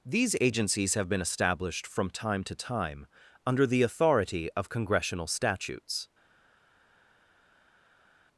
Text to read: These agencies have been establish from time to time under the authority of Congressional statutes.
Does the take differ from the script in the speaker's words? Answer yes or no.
yes